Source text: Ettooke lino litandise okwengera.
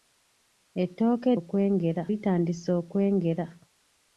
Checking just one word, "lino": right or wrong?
wrong